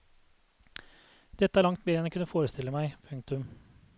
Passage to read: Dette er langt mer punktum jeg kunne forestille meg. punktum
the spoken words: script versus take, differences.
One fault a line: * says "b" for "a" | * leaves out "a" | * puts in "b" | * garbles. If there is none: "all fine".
* says "enn" for "punktum"